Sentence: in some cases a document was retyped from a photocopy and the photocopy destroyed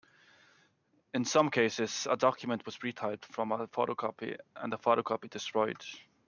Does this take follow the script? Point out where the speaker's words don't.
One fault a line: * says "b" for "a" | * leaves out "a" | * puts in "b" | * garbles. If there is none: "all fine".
all fine